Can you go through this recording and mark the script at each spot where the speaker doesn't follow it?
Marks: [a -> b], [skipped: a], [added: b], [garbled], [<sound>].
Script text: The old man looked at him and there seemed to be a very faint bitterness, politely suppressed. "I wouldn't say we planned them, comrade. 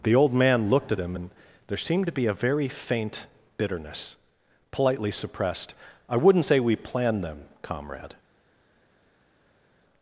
The old man looked at him and there seemed to be a very faint bitterness, politely suppressed. "I wouldn't say we planned them, comrade.